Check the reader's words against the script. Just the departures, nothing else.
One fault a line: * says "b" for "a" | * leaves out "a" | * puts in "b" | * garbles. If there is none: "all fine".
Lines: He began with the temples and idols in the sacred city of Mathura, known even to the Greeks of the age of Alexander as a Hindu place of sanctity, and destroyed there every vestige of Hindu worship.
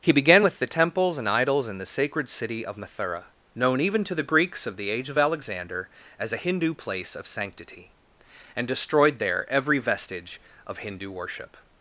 all fine